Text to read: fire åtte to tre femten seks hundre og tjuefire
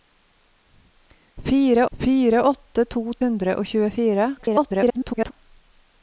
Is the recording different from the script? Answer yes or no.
yes